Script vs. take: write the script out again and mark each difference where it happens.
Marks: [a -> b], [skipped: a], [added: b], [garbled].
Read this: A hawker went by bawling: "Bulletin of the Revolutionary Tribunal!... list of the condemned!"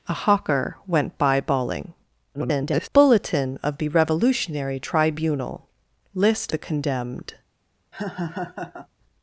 A hawker went by bawling: [garbled] "Bulletin of the Revolutionary Tribunal!... list [skipped: of] the condemned!"